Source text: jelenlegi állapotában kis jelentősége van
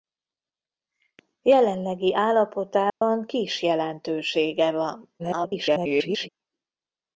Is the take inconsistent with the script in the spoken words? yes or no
yes